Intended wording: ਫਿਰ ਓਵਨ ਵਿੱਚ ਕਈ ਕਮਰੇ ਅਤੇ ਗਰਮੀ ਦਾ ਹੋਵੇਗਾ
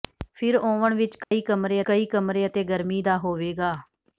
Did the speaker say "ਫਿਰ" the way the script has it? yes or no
yes